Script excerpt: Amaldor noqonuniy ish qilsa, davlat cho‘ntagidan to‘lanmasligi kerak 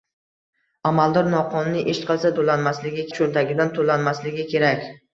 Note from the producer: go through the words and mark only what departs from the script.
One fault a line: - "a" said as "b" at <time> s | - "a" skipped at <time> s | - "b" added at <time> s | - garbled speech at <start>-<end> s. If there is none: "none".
- "davlat" said as "to‘lanmasligi" at 2.4 s